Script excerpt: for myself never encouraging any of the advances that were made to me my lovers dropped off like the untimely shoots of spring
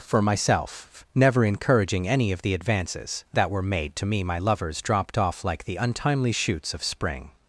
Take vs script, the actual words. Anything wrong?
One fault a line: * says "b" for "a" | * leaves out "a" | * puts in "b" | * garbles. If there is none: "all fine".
all fine